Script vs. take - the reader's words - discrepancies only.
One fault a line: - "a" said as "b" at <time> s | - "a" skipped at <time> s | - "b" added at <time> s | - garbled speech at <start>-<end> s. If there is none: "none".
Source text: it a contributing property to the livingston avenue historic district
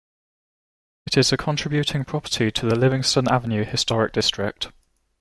- "is" added at 1.1 s